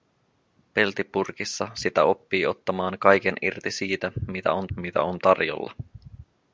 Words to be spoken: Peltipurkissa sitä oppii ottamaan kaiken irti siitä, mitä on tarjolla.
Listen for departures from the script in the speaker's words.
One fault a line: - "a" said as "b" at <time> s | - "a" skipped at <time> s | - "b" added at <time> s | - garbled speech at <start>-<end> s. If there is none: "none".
- "mitä on" added at 4.8 s